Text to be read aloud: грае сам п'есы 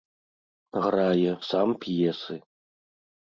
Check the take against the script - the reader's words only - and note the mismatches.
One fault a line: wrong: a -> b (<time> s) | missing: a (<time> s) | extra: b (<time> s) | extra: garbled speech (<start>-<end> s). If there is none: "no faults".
no faults